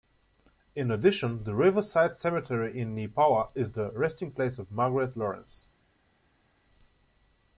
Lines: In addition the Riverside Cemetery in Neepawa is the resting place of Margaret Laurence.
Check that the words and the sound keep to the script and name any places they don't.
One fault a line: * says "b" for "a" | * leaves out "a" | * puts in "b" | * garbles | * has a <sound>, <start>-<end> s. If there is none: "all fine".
all fine